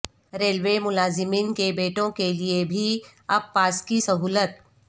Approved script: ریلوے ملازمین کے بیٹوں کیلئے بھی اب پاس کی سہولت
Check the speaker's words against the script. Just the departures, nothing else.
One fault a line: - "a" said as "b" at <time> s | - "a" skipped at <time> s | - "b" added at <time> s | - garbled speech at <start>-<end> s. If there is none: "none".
none